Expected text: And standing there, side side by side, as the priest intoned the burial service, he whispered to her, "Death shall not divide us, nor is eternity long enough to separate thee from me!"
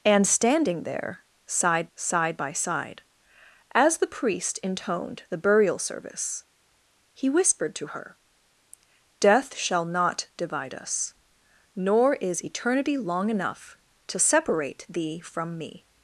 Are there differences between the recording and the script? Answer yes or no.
no